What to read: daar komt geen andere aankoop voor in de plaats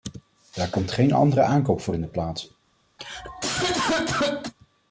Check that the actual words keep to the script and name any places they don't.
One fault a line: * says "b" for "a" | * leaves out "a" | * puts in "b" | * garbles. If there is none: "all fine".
all fine